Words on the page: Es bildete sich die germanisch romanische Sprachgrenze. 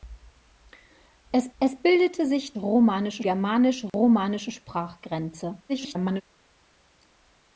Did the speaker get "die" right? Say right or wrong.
wrong